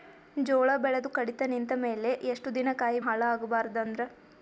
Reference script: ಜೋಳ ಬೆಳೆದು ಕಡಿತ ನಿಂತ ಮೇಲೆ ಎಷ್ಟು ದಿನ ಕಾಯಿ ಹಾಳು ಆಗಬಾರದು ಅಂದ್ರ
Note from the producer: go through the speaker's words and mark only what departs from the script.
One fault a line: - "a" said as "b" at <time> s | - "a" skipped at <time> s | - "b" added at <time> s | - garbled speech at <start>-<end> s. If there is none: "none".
none